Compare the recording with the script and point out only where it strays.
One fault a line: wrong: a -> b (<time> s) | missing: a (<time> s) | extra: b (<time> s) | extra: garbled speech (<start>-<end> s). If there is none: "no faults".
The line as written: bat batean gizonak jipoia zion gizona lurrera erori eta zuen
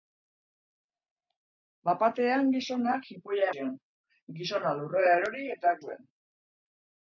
no faults